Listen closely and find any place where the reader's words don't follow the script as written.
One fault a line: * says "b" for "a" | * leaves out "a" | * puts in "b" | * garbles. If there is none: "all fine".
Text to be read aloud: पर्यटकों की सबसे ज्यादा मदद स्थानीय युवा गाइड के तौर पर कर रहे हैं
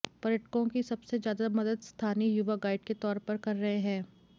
all fine